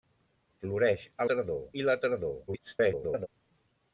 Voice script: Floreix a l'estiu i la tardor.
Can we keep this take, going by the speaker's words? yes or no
no